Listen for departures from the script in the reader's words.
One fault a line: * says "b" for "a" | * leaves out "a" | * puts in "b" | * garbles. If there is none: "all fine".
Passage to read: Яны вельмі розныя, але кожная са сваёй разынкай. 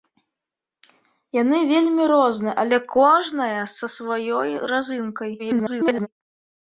* garbles